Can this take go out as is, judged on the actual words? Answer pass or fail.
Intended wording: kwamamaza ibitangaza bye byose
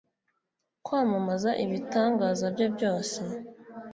pass